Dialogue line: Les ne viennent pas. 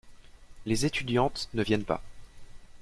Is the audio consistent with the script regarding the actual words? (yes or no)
no